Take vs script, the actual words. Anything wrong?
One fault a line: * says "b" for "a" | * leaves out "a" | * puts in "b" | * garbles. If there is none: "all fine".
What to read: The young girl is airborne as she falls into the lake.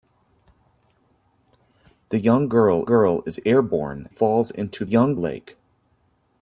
* puts in "girl"
* leaves out "as she"
* says "young" for "the"